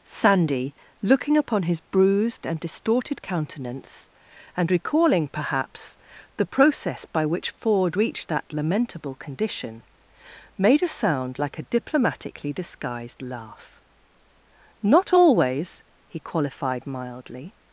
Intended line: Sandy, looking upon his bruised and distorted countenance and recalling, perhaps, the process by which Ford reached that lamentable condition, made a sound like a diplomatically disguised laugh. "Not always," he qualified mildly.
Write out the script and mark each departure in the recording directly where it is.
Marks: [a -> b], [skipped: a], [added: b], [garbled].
Sandy, looking upon his bruised and distorted countenance and recalling, perhaps, the process by which Ford reached that lamentable condition, made a sound like a diplomatically disguised laugh. "Not always," he qualified mildly.